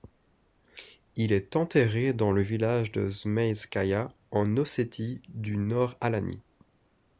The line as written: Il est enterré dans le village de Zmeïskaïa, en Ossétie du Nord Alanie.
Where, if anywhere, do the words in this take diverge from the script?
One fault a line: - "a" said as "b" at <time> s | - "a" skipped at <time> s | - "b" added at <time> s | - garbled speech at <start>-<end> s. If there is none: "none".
none